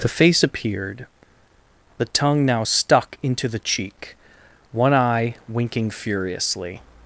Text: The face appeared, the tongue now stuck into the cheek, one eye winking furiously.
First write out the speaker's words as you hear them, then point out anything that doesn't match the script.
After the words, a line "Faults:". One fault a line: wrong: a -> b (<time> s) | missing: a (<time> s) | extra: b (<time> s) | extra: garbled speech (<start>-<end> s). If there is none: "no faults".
The face appeared, the tongue now stuck into the cheek, one eye winking furiously.
Faults:
no faults